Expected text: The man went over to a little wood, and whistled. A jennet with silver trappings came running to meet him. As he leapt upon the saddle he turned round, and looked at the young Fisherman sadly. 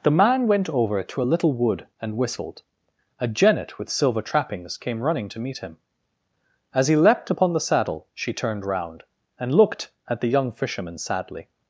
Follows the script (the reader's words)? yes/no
no